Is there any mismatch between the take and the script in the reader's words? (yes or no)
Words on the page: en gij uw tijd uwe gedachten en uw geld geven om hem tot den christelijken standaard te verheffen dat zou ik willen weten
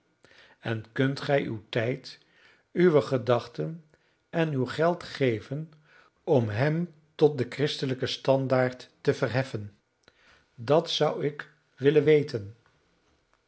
yes